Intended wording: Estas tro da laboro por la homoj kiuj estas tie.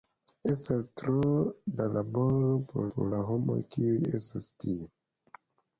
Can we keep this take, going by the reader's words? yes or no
no